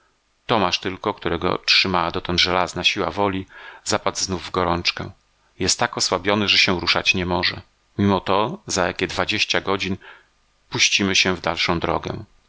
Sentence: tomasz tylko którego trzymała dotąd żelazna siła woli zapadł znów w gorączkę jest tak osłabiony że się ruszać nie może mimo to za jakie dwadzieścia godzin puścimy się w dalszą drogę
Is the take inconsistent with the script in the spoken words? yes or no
no